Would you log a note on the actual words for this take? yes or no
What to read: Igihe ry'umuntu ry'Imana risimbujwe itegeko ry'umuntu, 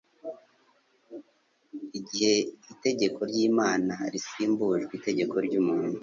yes